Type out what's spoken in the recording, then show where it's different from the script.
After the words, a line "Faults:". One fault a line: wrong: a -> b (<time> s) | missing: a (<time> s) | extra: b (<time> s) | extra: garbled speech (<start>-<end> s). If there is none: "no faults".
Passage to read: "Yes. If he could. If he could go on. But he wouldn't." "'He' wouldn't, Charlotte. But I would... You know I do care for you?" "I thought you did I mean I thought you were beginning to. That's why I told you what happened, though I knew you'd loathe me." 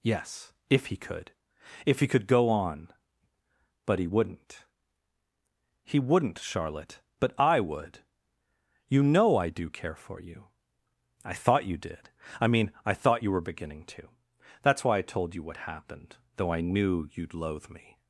"Yes. If he could. If he could go on. But he wouldn't." "'He' wouldn't, Charlotte. But I would... You know I do care for you?" "I thought you did I mean I thought you were beginning to. That's why I told you what happened, though I knew you'd loathe me."
Faults:
no faults